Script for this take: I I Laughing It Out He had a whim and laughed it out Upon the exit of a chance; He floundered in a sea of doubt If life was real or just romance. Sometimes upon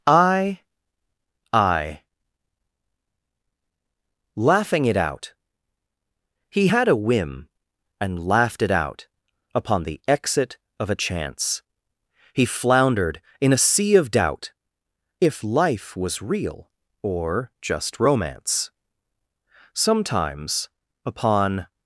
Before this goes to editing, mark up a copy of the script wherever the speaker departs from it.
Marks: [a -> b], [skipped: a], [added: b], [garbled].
I I Laughing It Out He had a whim and laughed it out Upon the exit of a chance; He floundered in a sea of doubt If life was real or just romance. Sometimes upon